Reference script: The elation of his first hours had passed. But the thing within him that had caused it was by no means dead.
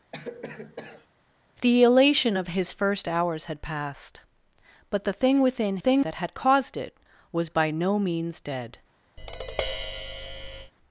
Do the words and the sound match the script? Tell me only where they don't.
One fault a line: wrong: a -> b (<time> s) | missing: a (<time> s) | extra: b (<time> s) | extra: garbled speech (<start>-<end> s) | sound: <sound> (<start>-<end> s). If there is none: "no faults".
sound: cough (0.1-1.1 s)
wrong: him -> thing (5.8 s)
sound: tap (9.2-10.7 s)